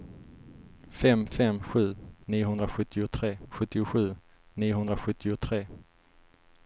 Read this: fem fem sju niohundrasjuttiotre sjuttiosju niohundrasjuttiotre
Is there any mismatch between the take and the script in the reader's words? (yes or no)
no